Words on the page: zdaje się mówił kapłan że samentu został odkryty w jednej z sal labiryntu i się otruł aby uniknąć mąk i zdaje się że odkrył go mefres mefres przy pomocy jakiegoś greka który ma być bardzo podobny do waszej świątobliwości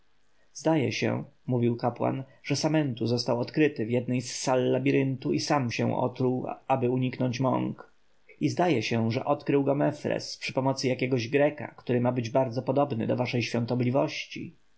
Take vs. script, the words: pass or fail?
fail